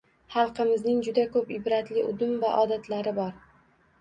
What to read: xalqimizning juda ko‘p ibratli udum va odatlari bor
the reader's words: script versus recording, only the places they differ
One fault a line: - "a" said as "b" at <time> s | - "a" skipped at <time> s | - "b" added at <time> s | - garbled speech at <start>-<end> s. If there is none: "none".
none